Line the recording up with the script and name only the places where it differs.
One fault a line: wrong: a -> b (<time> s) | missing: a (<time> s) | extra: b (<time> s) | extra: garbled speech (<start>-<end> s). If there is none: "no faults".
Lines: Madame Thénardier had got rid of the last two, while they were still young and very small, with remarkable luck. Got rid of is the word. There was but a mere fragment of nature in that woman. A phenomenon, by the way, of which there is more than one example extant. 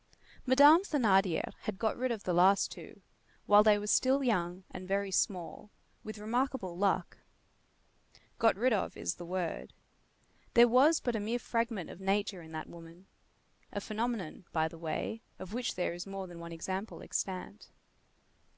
no faults